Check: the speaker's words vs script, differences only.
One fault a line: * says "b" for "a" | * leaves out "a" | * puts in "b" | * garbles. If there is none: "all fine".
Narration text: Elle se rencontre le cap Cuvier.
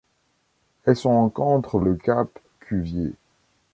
all fine